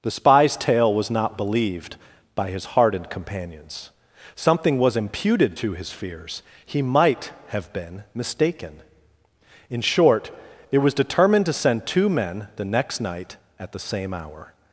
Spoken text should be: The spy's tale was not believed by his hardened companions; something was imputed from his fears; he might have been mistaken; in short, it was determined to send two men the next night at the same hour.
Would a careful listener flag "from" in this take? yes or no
yes